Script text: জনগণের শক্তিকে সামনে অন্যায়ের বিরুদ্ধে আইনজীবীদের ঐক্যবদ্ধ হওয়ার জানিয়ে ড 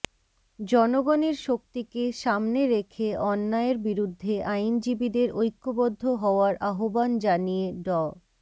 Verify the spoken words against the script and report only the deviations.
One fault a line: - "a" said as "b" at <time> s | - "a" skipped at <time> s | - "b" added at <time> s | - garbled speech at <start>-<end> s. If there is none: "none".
- "রেখে" added at 2.7 s
- "আহ্বান" added at 6.7 s